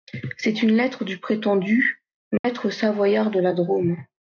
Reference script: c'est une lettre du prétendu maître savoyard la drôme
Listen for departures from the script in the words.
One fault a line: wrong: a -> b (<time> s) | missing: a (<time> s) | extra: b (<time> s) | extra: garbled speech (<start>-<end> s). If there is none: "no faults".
extra: de (3.3 s)